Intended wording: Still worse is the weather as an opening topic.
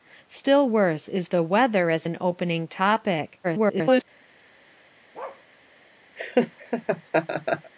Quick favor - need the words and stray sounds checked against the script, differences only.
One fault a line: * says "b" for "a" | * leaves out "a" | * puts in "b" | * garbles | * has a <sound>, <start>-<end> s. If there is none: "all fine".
* garbles
* has a bark, 5.1-5.4 s
* has a laugh, 6.2-7.7 s